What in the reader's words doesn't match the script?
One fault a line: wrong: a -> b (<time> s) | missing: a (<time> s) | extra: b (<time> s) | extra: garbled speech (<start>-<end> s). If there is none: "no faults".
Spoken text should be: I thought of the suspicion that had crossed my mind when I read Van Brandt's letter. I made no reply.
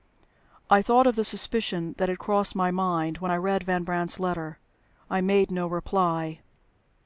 no faults